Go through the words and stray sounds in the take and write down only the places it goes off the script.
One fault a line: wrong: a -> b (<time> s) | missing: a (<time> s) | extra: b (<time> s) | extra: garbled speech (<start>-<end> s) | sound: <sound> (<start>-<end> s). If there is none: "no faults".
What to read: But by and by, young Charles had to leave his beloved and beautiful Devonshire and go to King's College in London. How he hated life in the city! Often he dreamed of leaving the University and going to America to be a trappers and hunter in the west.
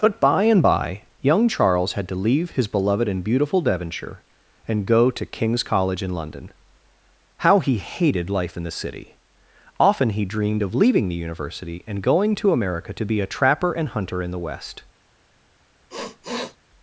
wrong: trappers -> trapper (13.3 s)
sound: sniff (15.9-16.6 s)